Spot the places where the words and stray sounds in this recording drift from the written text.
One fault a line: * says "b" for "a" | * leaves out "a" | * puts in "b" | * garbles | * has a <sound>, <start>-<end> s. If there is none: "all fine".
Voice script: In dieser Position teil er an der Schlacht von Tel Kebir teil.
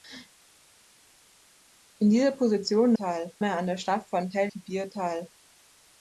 all fine